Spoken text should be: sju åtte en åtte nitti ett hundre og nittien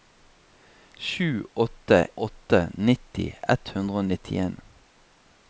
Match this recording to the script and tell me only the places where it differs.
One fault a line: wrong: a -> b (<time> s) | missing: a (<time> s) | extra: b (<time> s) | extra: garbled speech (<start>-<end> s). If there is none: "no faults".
missing: en (2.1 s)